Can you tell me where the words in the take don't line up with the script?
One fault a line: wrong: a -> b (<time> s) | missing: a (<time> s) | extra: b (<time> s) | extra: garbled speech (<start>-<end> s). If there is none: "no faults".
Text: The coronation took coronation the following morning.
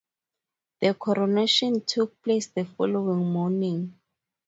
wrong: coronation -> place (2.2 s)